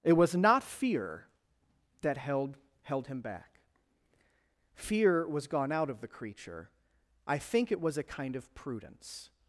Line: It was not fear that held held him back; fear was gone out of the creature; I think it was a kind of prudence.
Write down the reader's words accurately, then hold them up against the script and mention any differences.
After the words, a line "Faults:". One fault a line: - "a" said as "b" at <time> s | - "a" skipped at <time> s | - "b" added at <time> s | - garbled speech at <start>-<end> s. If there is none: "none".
It was not fear that held held him back; fear was gone out of the creature; I think it was a kind of prudence.
Faults:
none